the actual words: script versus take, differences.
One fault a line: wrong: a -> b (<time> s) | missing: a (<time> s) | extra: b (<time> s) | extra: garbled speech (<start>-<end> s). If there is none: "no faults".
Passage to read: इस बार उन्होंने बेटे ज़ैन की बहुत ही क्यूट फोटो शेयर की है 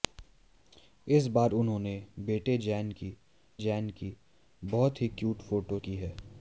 extra: ज़ैन की (3.6 s)
missing: शेयर (5.8 s)